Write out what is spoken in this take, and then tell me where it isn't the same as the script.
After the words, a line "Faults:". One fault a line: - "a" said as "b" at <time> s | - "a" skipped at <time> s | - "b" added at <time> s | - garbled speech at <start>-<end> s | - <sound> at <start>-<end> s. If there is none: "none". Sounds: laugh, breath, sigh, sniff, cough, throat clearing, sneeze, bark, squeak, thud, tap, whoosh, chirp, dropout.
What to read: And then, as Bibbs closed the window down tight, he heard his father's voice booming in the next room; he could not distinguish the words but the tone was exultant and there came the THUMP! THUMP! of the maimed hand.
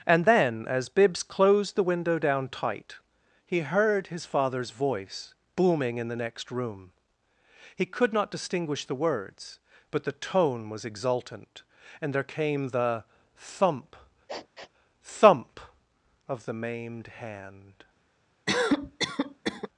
And then, as Bibbs closed the window down tight, he heard his father's voice booming in the next room; he could not distinguish the words but the tone was exultant and there came the THUMP! THUMP! of the maimed hand.
Faults:
- sniff at 14.3-14.7 s
- cough at 18.5-19.7 s